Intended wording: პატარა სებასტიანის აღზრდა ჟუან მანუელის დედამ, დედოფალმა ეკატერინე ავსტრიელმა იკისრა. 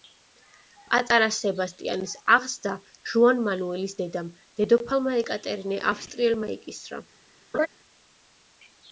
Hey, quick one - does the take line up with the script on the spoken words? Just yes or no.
yes